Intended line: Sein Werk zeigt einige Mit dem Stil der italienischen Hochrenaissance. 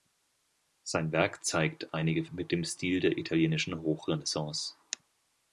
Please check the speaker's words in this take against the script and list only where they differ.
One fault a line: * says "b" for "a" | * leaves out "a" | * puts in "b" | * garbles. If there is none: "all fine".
all fine